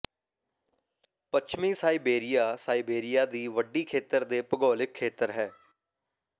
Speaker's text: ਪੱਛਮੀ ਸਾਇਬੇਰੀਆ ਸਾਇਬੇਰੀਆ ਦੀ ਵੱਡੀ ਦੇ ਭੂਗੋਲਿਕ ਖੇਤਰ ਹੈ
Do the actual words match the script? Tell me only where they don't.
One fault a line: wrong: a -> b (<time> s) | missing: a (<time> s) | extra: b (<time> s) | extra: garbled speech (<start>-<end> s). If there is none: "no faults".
extra: ਖੇਤਰ (3.8 s)